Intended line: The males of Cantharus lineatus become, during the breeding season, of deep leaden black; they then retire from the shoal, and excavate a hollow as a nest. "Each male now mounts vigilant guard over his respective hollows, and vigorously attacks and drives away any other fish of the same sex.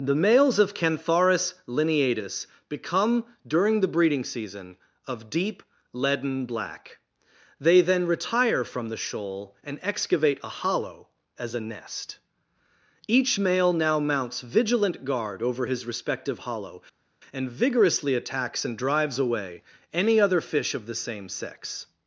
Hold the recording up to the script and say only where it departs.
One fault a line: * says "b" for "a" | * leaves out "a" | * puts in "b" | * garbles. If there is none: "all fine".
* says "hollow" for "hollows"